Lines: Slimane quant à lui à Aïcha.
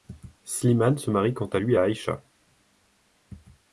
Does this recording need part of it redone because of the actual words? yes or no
yes